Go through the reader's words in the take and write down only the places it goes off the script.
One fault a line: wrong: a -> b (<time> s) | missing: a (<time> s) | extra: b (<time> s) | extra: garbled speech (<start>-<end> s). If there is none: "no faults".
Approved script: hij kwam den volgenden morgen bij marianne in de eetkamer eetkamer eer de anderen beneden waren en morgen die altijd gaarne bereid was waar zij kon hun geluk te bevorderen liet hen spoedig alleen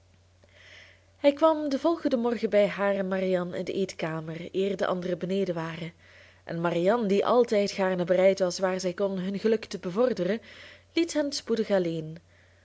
extra: haar en (2.7 s)
missing: eetkamer (4.5 s)
wrong: morgen -> marianne (6.6 s)